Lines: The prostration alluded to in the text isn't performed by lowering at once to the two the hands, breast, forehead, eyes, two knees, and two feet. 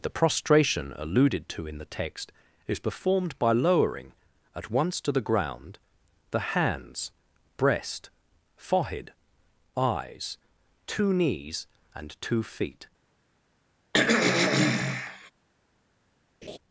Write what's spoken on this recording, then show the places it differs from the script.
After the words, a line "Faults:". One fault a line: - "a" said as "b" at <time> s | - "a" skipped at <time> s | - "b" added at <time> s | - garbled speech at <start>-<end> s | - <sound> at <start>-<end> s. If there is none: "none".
The prostration alluded to in the text is performed by lowering at once to the ground the hands, breast, forehead, eyes, two knees, and two feet.
Faults:
- "isn't" said as "is" at 2.7 s
- "two" said as "ground" at 5.2 s
- throat clearing at 13.9-15.3 s
- laugh at 16.4-16.6 s